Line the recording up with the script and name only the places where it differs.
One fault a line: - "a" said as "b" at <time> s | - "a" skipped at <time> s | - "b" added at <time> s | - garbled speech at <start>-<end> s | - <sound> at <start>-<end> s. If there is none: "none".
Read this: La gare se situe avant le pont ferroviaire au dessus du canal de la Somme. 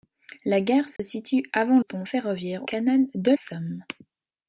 - dropout at 1.0-1.0 s
- "le" skipped at 1.8 s
- "au dessus du" skipped at 2.7 s
- "la" skipped at 3.3 s